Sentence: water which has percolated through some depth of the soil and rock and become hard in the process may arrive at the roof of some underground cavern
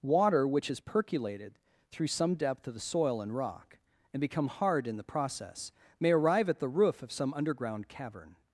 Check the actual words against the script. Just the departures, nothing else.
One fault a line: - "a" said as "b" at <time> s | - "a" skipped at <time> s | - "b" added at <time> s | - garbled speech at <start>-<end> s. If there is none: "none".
none